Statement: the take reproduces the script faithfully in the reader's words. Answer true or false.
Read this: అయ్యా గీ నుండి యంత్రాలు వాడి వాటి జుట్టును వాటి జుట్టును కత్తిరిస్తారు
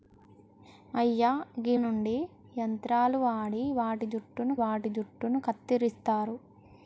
true